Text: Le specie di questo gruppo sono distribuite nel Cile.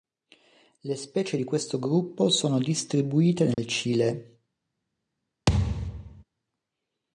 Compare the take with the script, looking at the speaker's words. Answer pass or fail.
pass